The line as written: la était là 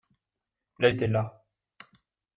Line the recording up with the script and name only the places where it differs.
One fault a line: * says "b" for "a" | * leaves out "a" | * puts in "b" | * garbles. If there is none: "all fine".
all fine